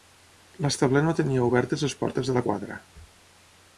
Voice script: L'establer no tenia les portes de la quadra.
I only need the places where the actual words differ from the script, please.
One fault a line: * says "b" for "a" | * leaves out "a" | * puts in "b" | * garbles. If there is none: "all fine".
* puts in "obertes"